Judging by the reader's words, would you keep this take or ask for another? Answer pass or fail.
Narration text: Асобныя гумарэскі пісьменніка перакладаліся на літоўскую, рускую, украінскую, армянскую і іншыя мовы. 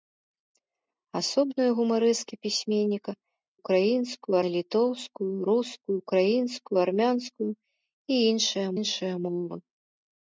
fail